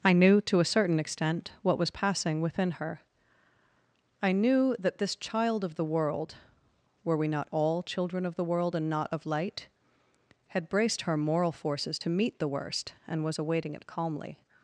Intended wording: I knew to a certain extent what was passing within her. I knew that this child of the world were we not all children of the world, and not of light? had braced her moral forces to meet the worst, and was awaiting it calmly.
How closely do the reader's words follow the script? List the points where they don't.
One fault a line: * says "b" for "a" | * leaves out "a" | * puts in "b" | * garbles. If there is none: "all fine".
all fine